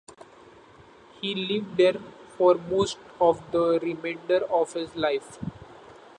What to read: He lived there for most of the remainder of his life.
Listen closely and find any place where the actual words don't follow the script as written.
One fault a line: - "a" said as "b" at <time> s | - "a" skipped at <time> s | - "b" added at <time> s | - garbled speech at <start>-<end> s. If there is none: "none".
none